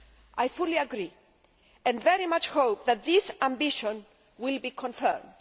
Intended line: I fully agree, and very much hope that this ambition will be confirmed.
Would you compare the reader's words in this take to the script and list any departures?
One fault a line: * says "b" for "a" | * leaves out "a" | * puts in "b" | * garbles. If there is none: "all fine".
all fine